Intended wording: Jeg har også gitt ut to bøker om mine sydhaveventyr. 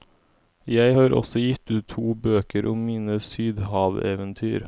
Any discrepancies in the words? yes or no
no